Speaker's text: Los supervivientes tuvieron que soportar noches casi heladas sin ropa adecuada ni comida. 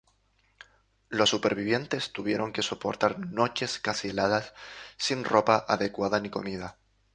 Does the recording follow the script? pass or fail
pass